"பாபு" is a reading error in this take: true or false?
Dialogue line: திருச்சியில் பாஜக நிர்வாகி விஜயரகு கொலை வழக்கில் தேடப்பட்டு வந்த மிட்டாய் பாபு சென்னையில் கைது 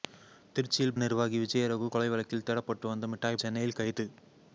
true